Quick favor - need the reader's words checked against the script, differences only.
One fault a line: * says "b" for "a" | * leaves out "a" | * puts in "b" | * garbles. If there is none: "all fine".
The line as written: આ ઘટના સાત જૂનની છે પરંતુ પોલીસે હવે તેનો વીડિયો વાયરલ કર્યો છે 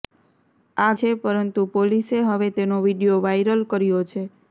* leaves out "ઘટના સાત જૂનની"